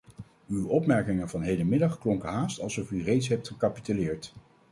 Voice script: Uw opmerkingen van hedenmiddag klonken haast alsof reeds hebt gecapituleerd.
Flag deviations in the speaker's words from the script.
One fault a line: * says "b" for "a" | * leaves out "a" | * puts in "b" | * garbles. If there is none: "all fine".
* puts in "u"